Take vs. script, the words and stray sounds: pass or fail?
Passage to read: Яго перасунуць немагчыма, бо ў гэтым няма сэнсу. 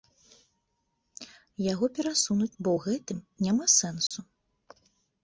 fail